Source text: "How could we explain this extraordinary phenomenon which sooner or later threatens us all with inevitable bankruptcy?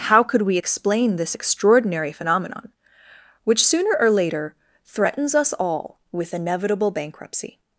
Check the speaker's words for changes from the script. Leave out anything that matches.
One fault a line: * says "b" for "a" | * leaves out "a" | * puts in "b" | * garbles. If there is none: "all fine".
all fine